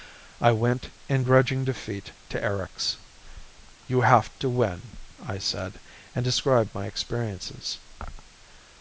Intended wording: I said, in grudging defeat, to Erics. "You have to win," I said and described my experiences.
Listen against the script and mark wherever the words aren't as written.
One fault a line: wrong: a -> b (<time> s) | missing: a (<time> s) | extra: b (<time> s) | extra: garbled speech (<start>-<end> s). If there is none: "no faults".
wrong: said -> went (0.5 s)